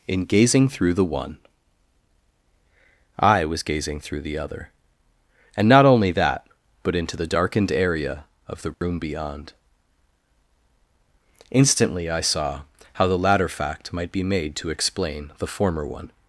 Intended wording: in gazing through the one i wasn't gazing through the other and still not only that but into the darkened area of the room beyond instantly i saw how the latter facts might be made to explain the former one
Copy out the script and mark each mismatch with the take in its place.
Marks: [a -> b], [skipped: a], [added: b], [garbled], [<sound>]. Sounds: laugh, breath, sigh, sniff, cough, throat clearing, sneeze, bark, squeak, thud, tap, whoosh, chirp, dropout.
in gazing through the one i [wasn't -> was] gazing through the other and [skipped: still] not only that but into the darkened area of the room [dropout] beyond instantly i saw how the latter [facts -> fact] might be made to explain the former one